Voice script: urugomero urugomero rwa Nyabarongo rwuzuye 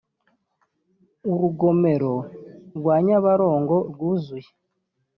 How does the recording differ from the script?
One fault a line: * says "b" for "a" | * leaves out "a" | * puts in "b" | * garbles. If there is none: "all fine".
* leaves out "urugomero"